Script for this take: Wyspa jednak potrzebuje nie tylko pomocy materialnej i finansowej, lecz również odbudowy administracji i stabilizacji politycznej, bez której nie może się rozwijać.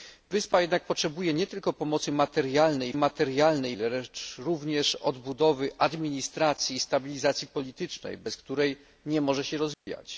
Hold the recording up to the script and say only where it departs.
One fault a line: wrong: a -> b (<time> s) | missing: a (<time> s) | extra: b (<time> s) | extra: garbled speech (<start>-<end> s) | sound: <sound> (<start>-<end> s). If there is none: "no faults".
wrong: finansowej -> materialnej (2.9 s)
sound: dropout (9.7-9.9 s)